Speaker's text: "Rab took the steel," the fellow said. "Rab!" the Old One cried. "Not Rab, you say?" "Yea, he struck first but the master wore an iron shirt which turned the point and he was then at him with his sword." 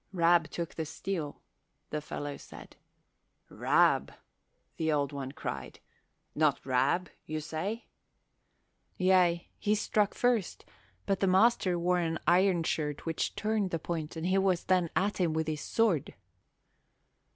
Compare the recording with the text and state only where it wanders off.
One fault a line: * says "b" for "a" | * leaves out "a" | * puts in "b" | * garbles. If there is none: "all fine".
all fine